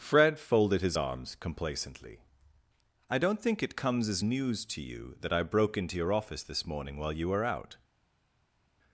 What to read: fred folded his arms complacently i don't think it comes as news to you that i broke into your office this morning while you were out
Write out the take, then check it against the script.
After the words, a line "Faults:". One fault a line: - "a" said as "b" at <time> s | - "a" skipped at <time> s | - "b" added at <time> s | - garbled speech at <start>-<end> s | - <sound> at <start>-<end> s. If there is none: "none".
fred folded his arms complacently i don't think it comes as news to you that i broke into your office this morning while you were out
Faults:
none